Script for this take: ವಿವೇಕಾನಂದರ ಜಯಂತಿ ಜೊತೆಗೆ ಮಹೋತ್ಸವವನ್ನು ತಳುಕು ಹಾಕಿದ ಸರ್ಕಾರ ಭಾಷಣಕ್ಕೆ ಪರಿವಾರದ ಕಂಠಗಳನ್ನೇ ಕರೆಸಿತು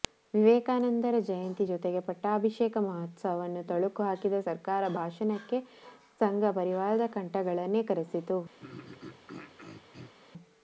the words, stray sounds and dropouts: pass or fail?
fail